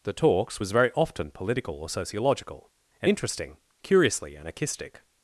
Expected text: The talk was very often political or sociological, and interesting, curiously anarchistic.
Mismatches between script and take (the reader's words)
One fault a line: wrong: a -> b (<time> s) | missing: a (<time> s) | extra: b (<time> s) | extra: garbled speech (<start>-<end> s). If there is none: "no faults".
wrong: talk -> talks (0.1 s)